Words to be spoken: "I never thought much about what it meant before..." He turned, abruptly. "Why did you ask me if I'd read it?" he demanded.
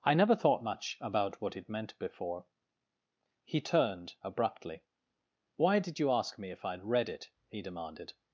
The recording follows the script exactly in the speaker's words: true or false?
true